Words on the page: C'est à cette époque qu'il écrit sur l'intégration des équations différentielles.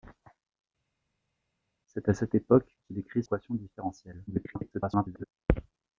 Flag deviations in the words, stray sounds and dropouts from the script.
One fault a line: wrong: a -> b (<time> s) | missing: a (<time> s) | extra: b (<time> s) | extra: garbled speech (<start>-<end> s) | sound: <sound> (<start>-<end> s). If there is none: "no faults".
missing: sur l'intégration des (3.2 s)
extra: garbled speech (4.3-5.3 s)